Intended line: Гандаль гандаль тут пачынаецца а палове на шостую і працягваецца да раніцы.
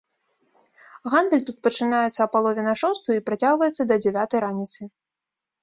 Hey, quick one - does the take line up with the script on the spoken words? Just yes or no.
no